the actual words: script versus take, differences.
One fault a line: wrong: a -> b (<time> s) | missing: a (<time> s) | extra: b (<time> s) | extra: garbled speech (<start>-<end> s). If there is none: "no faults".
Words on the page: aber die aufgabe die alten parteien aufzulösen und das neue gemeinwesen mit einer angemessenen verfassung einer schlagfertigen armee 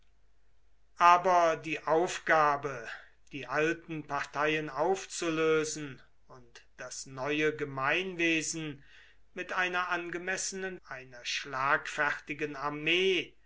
missing: verfassung (10.8 s)